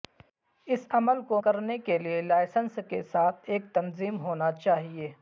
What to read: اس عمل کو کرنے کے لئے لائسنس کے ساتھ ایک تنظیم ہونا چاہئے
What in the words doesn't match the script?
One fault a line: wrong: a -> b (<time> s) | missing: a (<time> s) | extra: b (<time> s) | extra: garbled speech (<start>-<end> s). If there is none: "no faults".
no faults